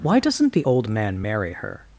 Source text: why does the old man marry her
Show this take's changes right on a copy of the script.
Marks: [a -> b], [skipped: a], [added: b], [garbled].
why [does -> doesn't] the old man marry her